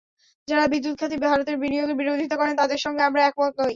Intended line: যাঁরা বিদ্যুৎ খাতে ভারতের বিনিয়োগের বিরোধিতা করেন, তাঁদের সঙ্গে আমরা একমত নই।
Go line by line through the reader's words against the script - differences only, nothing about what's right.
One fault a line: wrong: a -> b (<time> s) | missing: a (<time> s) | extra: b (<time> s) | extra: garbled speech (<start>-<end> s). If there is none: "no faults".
no faults